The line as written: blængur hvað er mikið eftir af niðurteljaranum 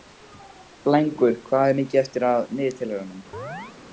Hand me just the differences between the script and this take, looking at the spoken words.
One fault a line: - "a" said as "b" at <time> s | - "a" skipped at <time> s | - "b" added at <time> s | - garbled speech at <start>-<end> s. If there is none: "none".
none